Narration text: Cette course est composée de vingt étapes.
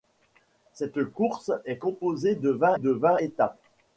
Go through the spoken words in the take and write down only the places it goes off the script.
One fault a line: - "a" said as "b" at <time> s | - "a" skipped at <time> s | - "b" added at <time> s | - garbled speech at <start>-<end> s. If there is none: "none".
- "de vingt" added at 2.7 s